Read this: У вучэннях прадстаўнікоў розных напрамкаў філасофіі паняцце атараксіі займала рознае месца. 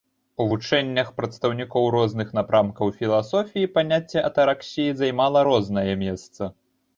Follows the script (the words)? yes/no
yes